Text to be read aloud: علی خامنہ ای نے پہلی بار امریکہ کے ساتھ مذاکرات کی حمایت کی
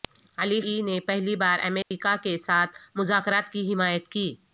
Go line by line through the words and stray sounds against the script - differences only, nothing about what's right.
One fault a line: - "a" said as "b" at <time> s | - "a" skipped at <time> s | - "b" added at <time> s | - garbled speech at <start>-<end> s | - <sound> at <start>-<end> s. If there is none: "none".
- "خامنہ" skipped at 0.6 s
- dropout at 1.8-1.9 s